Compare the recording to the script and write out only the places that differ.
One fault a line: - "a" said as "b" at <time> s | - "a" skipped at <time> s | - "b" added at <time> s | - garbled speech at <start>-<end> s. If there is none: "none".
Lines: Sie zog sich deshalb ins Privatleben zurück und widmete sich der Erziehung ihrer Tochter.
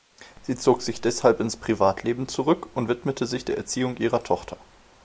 none